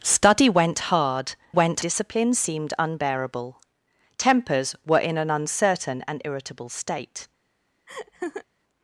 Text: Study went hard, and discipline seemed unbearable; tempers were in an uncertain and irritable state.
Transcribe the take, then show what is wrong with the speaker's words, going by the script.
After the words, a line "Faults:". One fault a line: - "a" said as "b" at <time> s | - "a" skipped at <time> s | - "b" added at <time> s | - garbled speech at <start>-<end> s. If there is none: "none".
Study went hard, went discipline seemed unbearable; tempers were in an uncertain and irritable state.
Faults:
- "and" said as "went" at 1.5 s